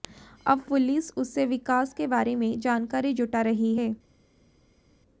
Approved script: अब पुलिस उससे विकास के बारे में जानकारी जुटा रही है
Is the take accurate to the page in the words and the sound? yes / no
yes